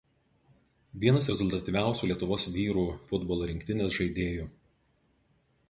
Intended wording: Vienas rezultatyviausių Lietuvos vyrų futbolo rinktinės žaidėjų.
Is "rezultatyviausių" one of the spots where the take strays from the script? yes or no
no